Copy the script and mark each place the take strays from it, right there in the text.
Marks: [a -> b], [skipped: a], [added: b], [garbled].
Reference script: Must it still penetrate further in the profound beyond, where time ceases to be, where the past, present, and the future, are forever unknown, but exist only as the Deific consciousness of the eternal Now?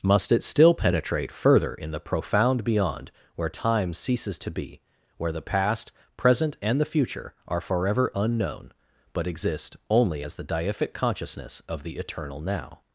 Must it still penetrate further in the profound beyond, where time ceases to be, where the past, present, and the future, are forever unknown, but exist only as the Deific consciousness of the eternal Now?